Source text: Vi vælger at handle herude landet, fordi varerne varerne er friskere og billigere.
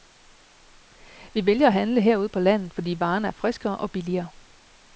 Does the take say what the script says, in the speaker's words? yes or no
no